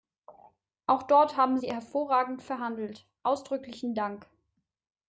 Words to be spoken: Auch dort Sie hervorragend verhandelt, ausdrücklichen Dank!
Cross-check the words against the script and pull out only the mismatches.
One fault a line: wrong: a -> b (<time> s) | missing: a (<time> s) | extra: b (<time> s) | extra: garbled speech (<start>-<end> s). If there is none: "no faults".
extra: haben (1.4 s)